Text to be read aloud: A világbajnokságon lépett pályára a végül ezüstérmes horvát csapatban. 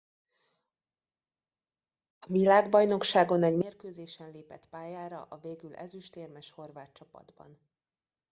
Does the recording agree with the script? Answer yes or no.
no